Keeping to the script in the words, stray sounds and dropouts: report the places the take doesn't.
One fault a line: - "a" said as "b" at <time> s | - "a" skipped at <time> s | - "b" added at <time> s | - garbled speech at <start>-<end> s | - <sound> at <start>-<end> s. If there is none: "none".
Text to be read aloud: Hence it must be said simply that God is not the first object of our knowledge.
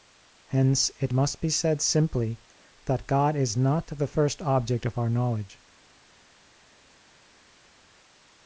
none